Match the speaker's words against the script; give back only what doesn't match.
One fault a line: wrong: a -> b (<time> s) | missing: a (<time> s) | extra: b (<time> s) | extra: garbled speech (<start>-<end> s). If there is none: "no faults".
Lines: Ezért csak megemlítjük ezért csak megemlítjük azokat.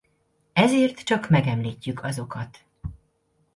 missing: ezért csak megemlítjük (2.0 s)